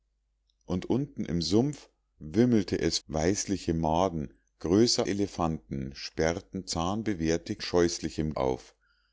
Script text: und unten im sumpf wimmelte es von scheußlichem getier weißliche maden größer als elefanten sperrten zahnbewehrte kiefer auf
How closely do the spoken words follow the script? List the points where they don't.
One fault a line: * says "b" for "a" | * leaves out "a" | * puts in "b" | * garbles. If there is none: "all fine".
* leaves out "von scheußlichem getier"
* leaves out "als"
* says "scheußlichem" for "kiefer"